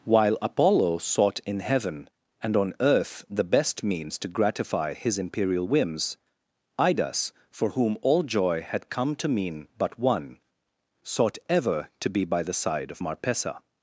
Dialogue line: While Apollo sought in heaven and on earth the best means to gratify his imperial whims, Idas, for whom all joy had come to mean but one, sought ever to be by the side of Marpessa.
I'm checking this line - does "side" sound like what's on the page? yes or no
yes